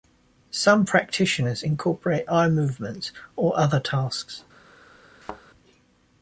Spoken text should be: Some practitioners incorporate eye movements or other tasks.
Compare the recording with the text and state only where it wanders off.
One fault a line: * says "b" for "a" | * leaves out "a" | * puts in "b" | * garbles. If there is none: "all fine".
all fine